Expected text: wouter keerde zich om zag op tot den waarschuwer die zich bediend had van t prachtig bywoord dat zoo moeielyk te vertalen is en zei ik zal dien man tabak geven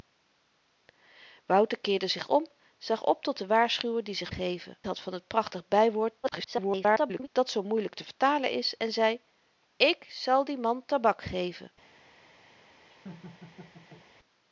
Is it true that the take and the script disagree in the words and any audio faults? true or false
true